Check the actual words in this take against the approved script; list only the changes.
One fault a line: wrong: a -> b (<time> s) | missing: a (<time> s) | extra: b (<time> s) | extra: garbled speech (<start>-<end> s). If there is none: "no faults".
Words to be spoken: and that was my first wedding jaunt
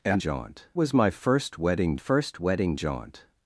wrong: that -> jaunt (0.2 s)
extra: first wedding (1.9 s)